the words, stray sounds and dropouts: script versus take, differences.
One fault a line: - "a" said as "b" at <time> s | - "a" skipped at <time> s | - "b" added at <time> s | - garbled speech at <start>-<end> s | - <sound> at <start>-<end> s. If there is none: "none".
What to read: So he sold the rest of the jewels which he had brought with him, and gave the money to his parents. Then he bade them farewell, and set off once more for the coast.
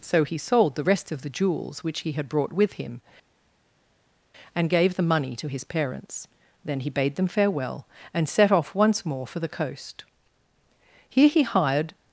- "Here he hired" added at 11.1 s